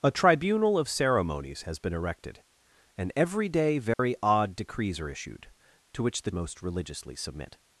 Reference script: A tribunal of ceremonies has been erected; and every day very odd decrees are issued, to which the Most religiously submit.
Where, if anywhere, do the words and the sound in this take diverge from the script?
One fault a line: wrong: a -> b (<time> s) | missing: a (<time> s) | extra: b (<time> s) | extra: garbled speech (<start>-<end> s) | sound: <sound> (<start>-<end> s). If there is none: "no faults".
sound: dropout (3.9-4.0 s)